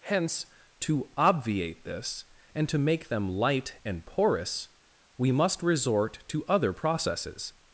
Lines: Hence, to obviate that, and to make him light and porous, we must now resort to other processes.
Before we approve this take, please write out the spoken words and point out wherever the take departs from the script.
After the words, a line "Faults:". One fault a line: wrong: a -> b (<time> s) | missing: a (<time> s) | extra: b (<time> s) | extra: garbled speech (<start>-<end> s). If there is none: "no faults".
Hence, to obviate this, and to make them light and porous, we must resort to other processes.
Faults:
wrong: that -> this (1.9 s)
wrong: him -> them (3.1 s)
missing: now (5.6 s)